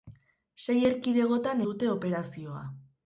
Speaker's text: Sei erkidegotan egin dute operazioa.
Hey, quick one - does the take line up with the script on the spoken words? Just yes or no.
no